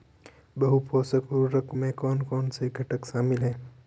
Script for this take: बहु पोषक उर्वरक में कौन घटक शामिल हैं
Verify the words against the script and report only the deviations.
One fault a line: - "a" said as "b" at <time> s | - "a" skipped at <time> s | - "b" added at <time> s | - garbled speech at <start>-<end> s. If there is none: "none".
- "कौन से" added at 2.2 s